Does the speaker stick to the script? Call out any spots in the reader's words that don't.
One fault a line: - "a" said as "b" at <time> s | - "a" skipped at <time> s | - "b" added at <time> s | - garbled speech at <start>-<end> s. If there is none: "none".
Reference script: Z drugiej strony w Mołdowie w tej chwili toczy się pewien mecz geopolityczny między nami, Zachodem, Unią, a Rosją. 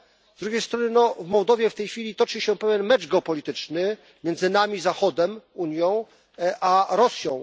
none